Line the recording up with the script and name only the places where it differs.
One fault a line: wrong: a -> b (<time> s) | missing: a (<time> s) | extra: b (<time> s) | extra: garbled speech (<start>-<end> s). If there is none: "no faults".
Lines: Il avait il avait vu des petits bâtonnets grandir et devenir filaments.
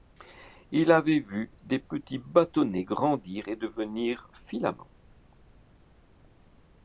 missing: il avait (1.2 s)